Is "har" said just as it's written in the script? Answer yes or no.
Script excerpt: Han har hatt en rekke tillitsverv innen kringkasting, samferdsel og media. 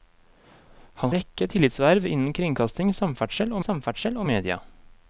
no